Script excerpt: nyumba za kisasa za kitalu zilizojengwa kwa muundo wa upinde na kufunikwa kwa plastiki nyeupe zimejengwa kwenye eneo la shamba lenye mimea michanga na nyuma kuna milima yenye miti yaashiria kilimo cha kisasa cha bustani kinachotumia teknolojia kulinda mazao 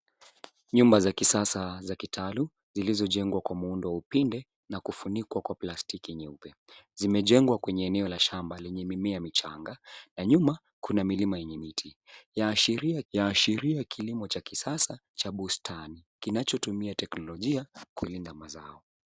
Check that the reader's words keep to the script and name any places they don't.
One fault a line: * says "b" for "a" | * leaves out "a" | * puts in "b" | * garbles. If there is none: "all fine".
* puts in "yaashiria"